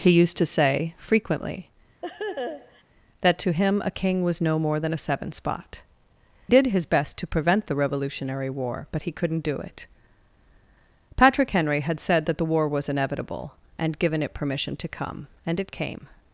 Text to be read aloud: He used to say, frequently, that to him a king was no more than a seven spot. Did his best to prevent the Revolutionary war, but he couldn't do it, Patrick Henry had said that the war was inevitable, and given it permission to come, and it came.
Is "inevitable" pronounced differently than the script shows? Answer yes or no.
no